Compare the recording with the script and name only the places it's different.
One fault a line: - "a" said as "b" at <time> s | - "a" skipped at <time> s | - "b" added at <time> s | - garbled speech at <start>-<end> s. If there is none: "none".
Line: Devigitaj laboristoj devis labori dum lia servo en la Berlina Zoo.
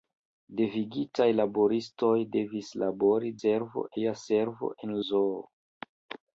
- "dum" said as "servo" at 3.4 s
- "la Berlina" skipped at 5.0 s